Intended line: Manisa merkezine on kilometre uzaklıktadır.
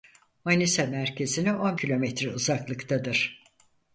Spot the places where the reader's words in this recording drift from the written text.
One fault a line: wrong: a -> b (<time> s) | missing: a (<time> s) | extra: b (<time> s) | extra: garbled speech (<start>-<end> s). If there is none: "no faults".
no faults